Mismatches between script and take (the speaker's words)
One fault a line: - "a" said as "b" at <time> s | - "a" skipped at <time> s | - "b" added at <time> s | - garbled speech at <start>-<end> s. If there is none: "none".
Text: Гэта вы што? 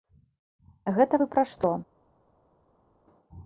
- "пра" added at 1.3 s